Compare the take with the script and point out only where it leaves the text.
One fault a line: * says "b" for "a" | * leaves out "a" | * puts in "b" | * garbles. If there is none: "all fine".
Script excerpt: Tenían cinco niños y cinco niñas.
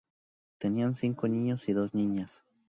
* says "dos" for "cinco"